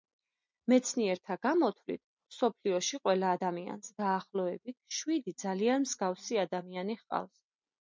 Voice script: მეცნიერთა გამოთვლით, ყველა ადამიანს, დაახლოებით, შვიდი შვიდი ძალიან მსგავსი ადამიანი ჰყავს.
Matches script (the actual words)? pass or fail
fail